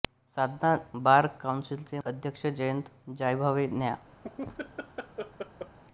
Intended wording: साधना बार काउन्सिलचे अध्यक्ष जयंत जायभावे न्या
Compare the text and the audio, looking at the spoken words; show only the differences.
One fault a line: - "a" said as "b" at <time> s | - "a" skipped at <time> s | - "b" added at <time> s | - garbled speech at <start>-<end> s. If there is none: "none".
none